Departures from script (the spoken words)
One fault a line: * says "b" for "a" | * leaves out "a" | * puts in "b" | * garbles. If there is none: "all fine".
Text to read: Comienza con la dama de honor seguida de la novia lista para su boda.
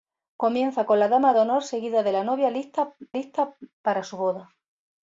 * puts in "lista"